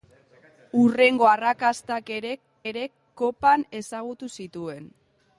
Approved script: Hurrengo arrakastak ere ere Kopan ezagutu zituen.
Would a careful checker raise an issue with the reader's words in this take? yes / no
no